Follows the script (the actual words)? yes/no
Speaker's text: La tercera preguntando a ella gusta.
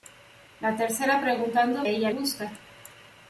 yes